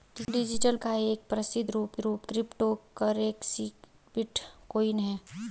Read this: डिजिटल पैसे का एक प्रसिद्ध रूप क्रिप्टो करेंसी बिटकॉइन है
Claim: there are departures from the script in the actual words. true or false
true